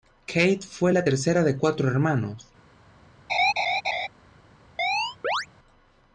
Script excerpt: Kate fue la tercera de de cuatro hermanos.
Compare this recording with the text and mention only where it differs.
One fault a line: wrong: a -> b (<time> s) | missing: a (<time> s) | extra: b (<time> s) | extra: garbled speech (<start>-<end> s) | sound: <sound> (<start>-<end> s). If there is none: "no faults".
missing: de (1.6 s)
sound: laugh (3.3-4.1 s)
sound: chirp (4.8-5.5 s)